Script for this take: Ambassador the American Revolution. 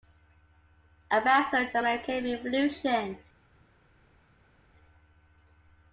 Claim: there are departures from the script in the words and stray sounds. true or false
false